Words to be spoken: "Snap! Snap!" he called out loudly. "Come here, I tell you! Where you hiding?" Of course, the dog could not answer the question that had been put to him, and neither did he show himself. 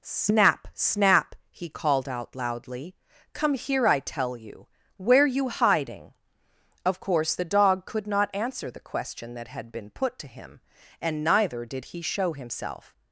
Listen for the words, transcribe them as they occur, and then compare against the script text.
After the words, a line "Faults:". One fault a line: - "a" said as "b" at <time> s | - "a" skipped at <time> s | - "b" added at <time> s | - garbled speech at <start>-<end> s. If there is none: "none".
"Snap! Snap!" he called out loudly. "Come here, I tell you! Where you hiding?" Of course, the dog could not answer the question that had been put to him, and neither did he show himself.
Faults:
none